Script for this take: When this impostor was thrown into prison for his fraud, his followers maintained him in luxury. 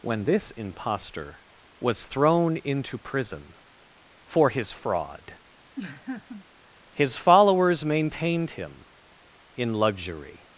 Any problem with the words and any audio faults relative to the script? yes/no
yes